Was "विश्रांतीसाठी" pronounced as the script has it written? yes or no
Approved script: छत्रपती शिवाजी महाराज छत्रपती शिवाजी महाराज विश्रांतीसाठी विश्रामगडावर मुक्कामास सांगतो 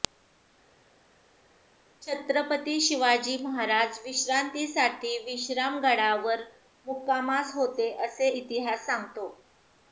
no